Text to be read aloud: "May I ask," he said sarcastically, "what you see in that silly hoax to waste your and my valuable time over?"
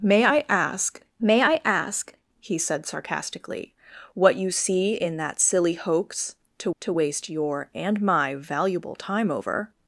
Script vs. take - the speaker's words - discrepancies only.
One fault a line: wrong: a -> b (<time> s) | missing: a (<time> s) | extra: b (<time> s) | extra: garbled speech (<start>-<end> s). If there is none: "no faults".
extra: may I ask (1.2 s)
extra: to (6.8 s)